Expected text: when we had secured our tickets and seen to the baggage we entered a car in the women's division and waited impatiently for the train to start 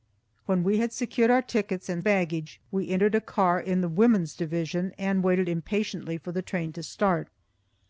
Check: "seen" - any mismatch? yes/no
yes